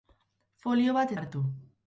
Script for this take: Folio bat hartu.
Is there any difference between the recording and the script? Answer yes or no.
no